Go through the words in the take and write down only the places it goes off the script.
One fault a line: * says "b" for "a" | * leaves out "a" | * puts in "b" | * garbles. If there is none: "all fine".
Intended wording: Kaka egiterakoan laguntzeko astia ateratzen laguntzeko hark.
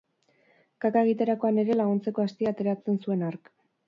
* puts in "ere"
* says "zuen" for "laguntzeko"